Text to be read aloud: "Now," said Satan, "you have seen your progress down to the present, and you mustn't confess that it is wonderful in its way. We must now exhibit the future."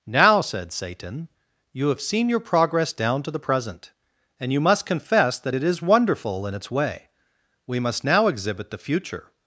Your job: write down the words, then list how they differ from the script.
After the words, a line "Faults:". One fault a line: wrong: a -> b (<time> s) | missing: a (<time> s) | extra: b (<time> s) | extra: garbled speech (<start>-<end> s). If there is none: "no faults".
"Now," said Satan, "you have seen your progress down to the present, and you must confess that it is wonderful in its way. We must now exhibit the future."
Faults:
wrong: mustn't -> must (4.6 s)